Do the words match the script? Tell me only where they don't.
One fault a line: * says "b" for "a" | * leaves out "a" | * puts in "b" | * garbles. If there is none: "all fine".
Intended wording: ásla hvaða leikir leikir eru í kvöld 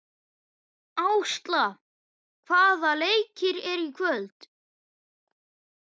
* leaves out "leikir"